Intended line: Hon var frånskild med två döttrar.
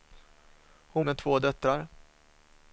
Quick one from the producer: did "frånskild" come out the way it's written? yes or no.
no